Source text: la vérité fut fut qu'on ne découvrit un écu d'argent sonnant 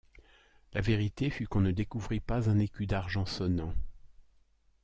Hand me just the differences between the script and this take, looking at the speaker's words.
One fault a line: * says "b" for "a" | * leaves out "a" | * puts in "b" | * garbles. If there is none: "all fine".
* leaves out "fut"
* puts in "pas"